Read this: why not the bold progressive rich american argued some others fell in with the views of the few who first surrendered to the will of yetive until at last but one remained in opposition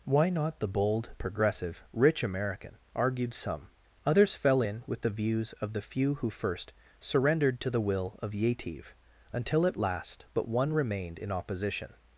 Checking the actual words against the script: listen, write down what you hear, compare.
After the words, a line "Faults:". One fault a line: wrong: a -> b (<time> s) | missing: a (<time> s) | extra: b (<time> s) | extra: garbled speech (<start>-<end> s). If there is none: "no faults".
why not the bold progressive rich american argued some others fell in with the views of the few who first surrendered to the will of yetive until at last but one remained in opposition
Faults:
no faults